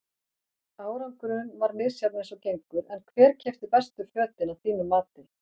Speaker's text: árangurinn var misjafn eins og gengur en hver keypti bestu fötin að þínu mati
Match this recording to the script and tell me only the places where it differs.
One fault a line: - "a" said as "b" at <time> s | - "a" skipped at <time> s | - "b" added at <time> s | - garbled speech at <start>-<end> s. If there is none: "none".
none